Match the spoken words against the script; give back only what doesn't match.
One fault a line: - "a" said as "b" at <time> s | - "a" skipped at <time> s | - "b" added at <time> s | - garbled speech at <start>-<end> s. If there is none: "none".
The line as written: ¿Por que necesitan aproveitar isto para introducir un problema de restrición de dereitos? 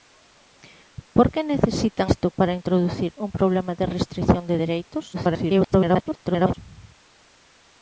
- "aproveitar" skipped at 2.1 s
- garbled speech at 5.1-6.5 s